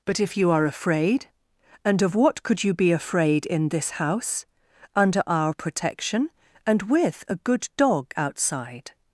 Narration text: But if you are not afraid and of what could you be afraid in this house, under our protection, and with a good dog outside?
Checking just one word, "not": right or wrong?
wrong